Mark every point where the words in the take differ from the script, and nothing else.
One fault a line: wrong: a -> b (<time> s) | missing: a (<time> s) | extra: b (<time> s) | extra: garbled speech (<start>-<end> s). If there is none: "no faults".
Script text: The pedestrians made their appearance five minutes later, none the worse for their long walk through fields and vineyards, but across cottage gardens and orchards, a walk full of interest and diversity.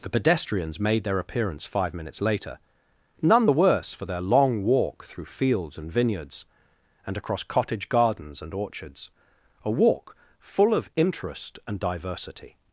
wrong: but -> and (7.0 s)